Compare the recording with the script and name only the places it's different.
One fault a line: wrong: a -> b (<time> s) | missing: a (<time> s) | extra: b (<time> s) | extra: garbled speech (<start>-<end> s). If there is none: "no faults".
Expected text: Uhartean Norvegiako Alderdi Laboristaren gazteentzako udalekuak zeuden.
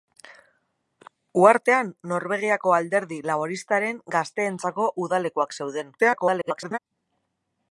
extra: garbled speech (6.0-6.8 s)